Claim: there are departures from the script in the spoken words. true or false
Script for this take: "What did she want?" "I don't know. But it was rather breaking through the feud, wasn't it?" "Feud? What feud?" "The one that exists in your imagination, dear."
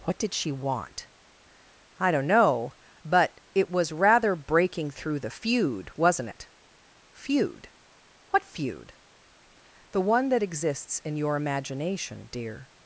false